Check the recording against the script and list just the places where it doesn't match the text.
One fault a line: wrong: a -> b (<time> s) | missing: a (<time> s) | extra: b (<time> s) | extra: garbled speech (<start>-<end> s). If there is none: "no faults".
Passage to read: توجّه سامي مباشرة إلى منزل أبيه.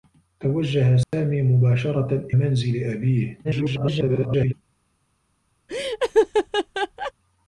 missing: إلى (2.3 s)
extra: garbled speech (3.4-4.5 s)